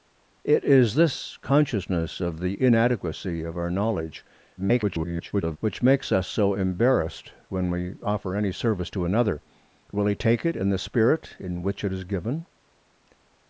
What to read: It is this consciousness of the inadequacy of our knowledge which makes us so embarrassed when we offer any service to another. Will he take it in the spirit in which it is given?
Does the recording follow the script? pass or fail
fail